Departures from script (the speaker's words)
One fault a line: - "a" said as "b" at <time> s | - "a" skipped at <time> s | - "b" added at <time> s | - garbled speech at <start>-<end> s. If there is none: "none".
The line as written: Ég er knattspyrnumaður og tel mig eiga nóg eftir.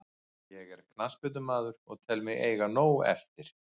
none